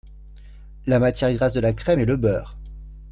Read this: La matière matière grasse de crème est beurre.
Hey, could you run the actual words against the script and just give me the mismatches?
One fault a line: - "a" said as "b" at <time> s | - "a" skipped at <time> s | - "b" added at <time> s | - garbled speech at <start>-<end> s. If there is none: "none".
- "matière" skipped at 1.3 s
- "la" added at 1.6 s
- "le" added at 2.1 s